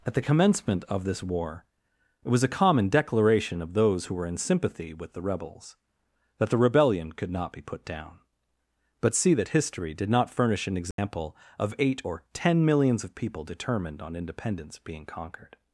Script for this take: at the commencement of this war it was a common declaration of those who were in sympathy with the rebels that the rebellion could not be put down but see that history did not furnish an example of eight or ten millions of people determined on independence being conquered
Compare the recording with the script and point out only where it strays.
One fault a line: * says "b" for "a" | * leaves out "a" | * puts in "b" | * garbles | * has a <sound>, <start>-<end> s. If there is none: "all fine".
* has a dropout, 10.9-11.0 s